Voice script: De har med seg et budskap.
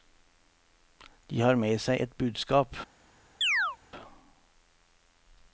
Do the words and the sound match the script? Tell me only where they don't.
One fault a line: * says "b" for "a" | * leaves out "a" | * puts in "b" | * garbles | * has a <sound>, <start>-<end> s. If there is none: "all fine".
* has a chirp, 3.4-3.8 s